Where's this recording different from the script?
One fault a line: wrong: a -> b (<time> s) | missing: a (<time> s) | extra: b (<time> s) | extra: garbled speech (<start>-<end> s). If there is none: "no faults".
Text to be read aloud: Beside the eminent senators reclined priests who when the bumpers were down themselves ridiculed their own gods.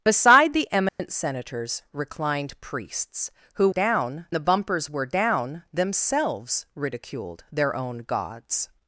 wrong: when -> down (3.7 s)